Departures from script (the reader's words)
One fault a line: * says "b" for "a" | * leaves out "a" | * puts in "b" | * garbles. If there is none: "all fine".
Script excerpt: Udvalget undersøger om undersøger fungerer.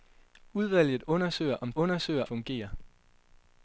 all fine